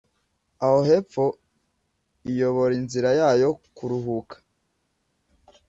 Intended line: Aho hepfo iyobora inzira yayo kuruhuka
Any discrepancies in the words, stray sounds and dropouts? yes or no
no